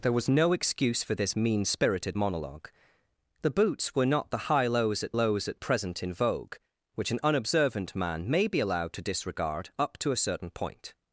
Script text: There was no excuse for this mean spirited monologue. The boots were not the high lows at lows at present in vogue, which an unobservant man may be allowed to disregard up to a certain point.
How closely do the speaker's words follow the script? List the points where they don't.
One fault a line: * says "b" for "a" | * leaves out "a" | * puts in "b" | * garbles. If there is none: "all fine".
all fine